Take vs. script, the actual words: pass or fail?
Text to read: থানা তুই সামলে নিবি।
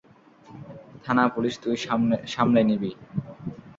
fail